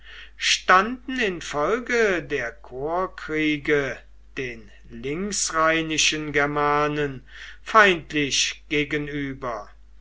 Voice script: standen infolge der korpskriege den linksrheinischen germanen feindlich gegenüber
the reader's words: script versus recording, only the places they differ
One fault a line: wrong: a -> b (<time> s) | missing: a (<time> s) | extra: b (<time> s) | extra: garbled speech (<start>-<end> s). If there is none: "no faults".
no faults